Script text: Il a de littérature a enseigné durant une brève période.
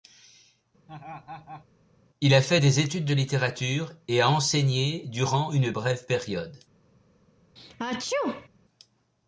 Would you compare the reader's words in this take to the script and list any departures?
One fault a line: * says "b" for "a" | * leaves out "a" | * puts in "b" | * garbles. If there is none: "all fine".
* puts in "fait des études"
* puts in "et"